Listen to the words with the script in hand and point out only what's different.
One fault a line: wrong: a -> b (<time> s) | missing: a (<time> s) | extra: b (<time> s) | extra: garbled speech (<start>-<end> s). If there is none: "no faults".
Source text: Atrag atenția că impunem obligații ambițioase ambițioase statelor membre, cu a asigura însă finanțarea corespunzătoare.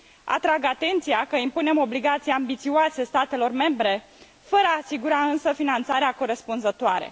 missing: ambițioase (3.0 s)
wrong: cu -> fără (4.4 s)